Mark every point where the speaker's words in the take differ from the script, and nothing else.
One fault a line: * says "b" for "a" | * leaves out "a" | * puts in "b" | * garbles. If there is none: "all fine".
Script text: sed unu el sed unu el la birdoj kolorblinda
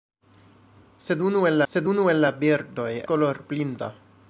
all fine